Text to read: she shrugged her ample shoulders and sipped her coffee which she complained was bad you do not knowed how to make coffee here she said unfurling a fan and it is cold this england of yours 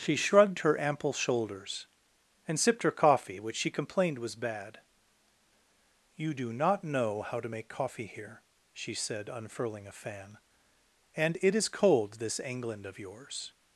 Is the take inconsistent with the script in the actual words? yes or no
yes